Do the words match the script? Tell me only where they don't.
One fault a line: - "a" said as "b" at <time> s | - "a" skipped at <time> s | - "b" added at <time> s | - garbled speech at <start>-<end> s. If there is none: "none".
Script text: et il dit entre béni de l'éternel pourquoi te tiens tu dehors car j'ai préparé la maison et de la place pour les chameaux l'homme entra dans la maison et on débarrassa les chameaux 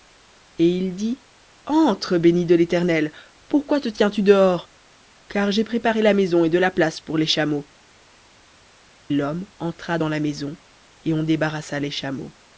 none